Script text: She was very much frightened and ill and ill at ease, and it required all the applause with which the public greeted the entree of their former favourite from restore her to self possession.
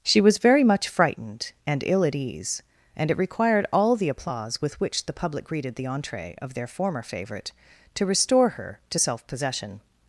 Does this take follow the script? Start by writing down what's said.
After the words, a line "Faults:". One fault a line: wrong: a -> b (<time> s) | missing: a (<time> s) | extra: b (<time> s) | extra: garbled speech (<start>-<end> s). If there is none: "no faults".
She was very much frightened and ill at ease, and it required all the applause with which the public greeted the entree of their former favourite to restore her to self possession.
Faults:
missing: and ill (2.0 s)
wrong: from -> to (7.9 s)